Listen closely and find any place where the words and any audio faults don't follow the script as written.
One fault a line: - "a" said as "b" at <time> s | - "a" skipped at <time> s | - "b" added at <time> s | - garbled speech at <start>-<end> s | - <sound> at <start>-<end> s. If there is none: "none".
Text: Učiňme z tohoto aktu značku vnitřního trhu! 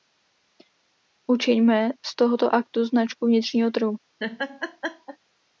- laugh at 4.2-5.2 s